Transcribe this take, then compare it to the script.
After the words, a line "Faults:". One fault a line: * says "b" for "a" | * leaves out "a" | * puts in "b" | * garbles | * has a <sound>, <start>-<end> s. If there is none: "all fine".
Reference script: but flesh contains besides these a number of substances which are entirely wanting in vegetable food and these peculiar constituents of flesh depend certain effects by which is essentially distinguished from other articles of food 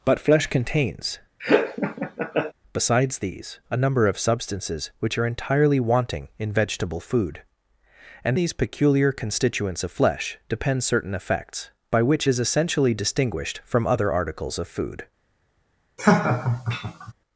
but flesh contains besides these a number of substances which are entirely wanting in vegetable food and these peculiar constituents of flesh depend certain effects by which is essentially distinguished from other articles of food
Faults:
* has a laugh, 1.4-2.5 s
* has a laugh, 16.0-17.1 s